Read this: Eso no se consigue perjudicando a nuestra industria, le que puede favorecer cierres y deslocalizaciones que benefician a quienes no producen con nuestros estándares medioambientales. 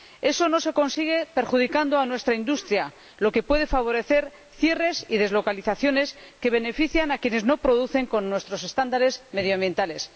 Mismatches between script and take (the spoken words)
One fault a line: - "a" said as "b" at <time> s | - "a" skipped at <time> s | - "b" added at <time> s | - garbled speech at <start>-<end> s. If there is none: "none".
- "le" said as "lo" at 3.2 s